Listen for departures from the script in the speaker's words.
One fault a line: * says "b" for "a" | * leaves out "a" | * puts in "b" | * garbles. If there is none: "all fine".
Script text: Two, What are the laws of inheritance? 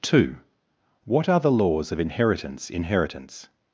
* puts in "inheritance"